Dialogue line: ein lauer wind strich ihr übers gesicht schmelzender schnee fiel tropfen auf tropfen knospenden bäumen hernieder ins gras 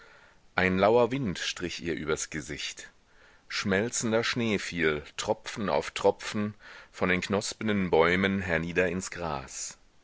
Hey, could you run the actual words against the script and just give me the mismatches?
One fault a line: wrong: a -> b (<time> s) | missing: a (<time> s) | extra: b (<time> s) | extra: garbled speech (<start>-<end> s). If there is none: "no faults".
extra: von den (6.9 s)